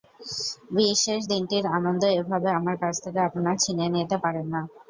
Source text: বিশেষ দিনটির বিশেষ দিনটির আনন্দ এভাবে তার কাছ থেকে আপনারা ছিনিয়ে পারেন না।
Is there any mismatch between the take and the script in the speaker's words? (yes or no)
yes